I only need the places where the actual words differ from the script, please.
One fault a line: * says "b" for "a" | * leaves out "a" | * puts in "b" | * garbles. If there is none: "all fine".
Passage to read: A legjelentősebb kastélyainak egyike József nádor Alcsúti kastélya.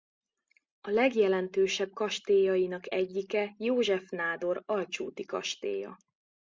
all fine